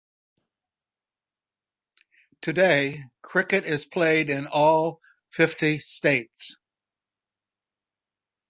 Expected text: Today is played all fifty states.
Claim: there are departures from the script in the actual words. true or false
true